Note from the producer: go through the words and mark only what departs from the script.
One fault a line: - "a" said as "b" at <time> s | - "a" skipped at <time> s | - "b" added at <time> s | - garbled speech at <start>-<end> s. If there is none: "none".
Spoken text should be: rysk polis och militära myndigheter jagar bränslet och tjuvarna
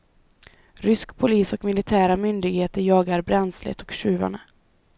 none